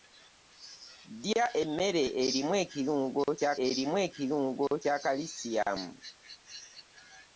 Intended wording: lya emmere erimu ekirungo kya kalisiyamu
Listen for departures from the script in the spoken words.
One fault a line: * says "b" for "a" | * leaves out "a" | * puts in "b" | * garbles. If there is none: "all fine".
* puts in "erimu ekirungo kya"